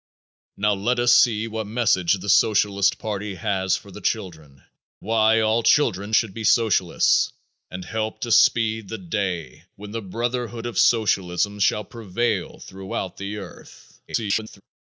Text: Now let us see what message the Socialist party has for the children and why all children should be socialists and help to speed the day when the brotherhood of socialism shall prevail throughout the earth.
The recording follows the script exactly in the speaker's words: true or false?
false